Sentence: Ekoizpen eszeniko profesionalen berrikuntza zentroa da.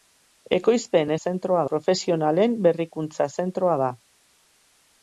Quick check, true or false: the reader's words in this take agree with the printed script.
false